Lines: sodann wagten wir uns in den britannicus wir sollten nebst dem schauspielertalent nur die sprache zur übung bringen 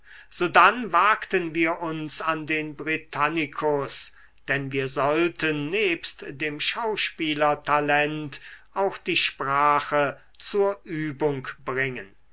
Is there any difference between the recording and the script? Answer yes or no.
yes